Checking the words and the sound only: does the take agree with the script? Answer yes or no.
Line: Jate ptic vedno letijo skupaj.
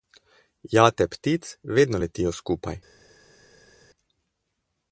yes